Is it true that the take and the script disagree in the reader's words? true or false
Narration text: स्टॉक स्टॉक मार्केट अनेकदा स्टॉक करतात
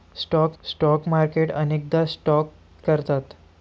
false